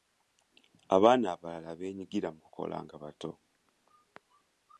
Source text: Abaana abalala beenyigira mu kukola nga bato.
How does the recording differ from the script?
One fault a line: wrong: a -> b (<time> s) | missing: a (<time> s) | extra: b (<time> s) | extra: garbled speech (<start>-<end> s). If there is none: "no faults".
no faults